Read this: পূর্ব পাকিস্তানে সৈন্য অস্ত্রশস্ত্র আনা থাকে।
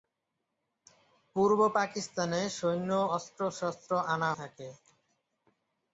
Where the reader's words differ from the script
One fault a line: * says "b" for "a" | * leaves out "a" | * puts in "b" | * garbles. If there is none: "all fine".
all fine